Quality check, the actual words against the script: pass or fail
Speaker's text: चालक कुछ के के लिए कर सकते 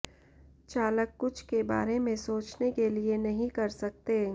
fail